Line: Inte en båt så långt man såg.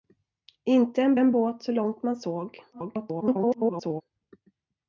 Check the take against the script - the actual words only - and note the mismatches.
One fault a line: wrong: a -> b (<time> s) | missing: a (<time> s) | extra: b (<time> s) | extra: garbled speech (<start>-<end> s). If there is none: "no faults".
extra: en (1.2 s)
extra: garbled speech (2.7-4.0 s)